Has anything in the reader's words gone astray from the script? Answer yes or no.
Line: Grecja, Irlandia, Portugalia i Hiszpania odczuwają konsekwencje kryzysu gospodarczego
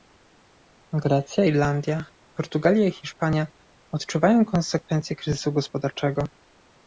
no